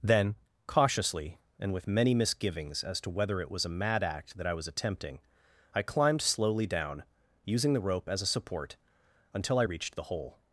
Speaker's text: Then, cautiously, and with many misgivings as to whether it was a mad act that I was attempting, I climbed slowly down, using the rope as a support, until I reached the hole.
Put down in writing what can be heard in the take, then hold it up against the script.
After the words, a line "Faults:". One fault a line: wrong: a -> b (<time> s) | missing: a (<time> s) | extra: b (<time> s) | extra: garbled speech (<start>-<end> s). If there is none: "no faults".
Then, cautiously, and with many misgivings as to whether it was a mad act that I was attempting, I climbed slowly down, using the rope as a support, until I reached the hole.
Faults:
no faults